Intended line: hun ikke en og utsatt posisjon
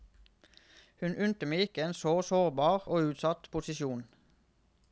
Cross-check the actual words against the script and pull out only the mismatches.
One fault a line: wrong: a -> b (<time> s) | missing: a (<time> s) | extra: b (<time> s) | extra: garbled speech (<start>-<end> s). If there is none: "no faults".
extra: unte meg (1.2 s)
extra: så sårbar (2.0 s)